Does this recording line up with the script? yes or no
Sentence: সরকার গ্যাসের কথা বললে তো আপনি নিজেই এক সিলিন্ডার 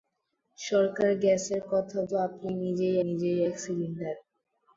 no